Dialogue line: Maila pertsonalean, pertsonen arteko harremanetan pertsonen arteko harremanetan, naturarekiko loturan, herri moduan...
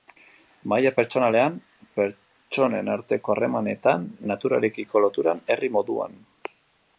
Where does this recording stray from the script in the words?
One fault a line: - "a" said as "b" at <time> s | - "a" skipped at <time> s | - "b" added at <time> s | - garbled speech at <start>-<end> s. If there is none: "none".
- "pertsonen arteko harremanetan" skipped at 4.1 s